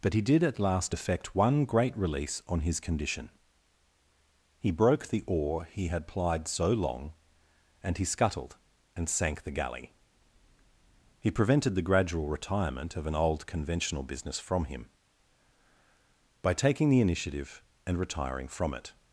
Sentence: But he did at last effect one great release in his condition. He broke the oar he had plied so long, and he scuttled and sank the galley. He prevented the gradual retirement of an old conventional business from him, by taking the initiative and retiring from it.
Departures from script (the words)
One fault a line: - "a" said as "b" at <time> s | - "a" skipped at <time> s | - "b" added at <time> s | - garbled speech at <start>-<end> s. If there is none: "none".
- "in" said as "on" at 2.5 s